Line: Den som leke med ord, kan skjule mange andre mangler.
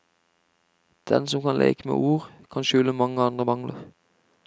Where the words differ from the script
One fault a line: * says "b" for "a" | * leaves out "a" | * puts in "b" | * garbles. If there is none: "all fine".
* puts in "kan"